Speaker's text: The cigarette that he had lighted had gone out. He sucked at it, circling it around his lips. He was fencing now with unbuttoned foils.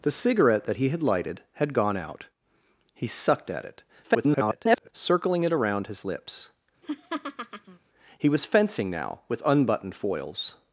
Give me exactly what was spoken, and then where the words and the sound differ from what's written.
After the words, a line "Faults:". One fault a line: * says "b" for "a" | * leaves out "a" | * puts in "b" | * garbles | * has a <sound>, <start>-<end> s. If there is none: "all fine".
The cigarette that he had lighted had gone out. He sucked at it, [garbled] circling it around his lips. He was fencing now with unbuttoned foils.
Faults:
* garbles
* has a laugh, 6.8-7.8 s